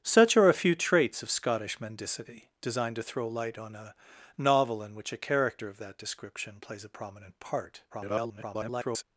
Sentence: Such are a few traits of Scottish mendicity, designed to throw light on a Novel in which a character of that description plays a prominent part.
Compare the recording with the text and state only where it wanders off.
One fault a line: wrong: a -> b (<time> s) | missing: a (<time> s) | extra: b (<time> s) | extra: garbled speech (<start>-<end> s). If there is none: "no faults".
extra: garbled speech (7.9-9.0 s)